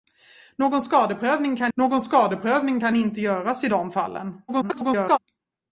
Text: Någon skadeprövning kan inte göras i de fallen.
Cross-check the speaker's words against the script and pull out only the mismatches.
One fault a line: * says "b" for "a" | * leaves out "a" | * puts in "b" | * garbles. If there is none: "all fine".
* puts in "någon skadeprövning kan"
* garbles